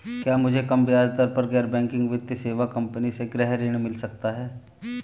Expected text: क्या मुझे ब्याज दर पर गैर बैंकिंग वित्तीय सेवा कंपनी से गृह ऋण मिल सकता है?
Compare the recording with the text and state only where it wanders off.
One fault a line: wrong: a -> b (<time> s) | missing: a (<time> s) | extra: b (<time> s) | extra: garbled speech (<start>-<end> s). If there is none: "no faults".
extra: कम (0.6 s)